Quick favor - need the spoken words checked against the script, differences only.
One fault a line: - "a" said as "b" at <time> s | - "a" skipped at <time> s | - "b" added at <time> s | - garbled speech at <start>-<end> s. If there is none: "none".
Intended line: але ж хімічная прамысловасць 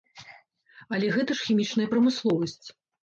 - "гэта" added at 1.2 s